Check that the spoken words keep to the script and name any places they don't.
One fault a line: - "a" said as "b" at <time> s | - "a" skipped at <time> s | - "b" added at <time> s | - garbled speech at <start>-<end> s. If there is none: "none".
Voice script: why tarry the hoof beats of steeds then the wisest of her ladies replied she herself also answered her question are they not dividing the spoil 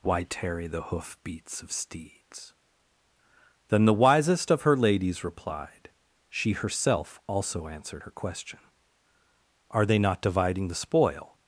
none